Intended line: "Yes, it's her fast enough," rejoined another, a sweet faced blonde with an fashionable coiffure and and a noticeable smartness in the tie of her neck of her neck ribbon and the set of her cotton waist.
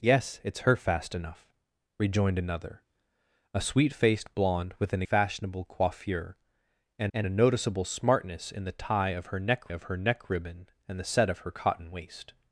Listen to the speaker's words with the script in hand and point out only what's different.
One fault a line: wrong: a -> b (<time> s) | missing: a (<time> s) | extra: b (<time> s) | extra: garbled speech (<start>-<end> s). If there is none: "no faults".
no faults